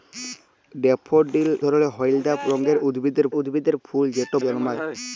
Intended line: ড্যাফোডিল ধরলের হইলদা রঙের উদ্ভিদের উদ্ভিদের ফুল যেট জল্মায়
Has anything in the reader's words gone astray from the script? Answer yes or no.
no